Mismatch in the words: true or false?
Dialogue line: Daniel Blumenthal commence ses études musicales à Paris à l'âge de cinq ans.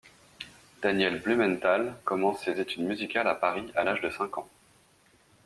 false